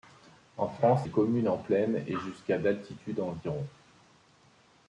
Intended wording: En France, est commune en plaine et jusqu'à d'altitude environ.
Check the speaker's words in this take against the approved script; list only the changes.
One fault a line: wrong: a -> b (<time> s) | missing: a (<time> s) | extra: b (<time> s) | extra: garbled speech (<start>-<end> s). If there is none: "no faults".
no faults